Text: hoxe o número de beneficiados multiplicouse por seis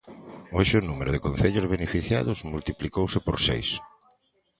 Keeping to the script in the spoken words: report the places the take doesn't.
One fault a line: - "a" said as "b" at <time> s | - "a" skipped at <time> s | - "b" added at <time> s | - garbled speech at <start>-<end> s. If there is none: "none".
- "concellos" added at 1.2 s